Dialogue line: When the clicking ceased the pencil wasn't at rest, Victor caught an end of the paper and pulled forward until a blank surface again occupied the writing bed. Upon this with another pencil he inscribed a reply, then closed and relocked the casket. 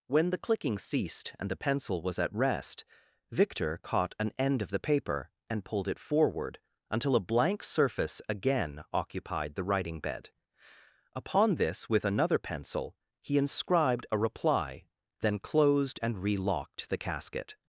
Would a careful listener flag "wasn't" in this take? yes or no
yes